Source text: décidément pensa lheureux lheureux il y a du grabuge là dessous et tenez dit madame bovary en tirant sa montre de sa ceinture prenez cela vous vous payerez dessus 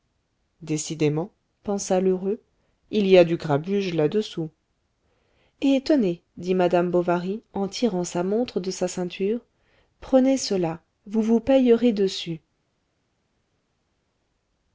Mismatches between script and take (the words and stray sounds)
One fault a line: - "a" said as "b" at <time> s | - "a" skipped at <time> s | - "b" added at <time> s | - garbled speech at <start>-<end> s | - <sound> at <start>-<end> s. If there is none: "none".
- "lheureux" skipped at 2.4 s